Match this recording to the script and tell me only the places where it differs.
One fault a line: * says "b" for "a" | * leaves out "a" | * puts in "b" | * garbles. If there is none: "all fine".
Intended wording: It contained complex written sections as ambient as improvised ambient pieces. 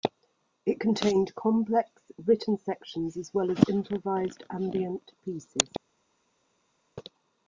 * says "well" for "ambient"